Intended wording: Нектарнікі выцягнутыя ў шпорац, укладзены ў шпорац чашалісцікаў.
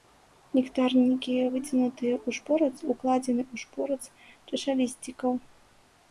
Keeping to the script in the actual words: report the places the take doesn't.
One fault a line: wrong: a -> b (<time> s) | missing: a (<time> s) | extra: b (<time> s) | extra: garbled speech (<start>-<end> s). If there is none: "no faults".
no faults